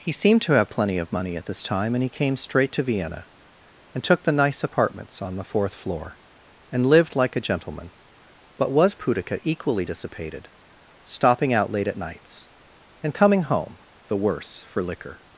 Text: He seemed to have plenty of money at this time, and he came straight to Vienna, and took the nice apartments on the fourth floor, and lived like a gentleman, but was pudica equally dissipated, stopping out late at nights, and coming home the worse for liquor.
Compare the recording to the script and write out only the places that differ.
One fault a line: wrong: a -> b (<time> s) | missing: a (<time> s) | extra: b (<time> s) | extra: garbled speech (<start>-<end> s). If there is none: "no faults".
no faults